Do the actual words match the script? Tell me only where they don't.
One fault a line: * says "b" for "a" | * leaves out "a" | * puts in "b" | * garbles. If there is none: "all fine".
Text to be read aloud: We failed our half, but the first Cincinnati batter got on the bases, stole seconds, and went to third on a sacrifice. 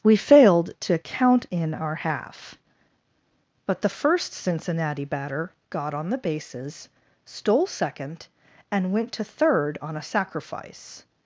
* puts in "to count in"
* says "second" for "seconds"